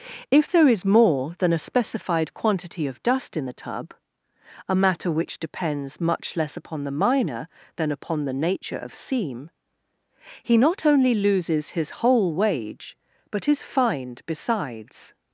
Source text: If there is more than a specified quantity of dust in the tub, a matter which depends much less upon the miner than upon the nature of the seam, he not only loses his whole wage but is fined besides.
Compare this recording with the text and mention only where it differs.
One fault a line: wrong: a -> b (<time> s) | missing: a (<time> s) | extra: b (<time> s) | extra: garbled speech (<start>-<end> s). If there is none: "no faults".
missing: the (8.9 s)